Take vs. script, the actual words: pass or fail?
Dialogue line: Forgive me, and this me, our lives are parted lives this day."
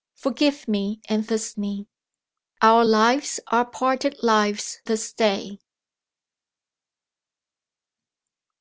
pass